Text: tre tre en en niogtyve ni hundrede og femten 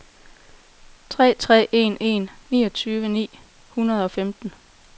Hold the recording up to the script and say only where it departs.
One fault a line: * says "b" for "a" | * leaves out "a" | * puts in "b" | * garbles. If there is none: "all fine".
all fine